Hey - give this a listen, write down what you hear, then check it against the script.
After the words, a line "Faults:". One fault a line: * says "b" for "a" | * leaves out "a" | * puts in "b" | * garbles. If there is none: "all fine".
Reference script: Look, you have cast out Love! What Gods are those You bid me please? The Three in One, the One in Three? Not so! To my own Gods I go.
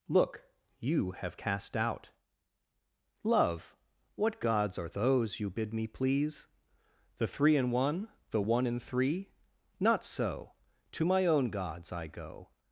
Look, you have cast out Love! What Gods are those You bid me please? The Three in One, the One in Three? Not so! To my own Gods I go.
Faults:
all fine